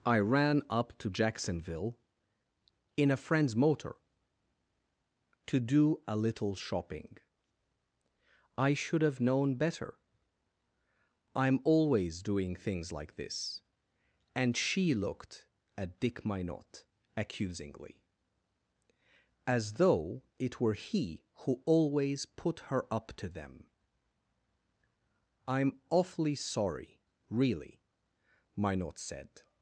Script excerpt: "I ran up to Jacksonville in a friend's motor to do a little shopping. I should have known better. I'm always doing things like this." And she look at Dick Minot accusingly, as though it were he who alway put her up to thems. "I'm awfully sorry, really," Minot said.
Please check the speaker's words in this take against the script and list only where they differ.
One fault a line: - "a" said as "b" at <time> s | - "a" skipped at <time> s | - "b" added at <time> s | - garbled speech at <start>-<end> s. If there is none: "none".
- "look" said as "looked" at 14.9 s
- "alway" said as "always" at 21.7 s
- "thems" said as "them" at 23.3 s